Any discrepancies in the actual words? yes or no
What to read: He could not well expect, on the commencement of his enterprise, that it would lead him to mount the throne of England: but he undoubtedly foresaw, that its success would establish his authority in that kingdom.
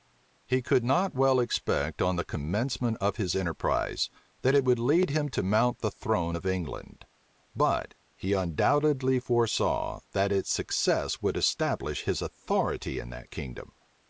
no